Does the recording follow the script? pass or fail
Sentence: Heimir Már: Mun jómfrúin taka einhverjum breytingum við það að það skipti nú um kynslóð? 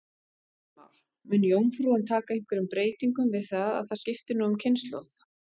pass